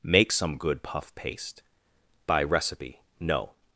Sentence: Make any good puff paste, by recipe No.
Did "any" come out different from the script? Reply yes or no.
yes